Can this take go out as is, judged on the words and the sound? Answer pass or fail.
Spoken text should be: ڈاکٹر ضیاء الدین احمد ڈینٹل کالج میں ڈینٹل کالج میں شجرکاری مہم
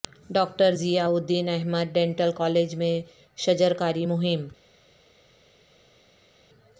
fail